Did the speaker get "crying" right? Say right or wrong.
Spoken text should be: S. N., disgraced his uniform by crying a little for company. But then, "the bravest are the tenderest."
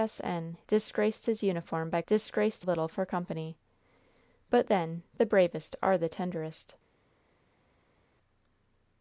wrong